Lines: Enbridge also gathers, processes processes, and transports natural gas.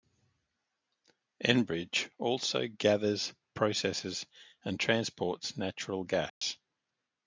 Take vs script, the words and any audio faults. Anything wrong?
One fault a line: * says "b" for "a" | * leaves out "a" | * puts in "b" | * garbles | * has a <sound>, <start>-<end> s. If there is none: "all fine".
* leaves out "processes"
* has a dropout, 6.3-6.4 s